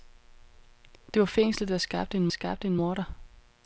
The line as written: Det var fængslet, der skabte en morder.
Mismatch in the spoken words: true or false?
true